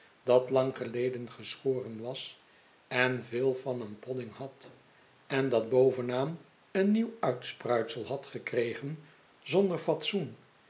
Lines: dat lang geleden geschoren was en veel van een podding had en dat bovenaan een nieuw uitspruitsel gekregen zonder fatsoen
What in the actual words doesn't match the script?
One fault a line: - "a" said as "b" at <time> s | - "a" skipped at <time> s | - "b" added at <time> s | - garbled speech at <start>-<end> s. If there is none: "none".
- "had" added at 8.1 s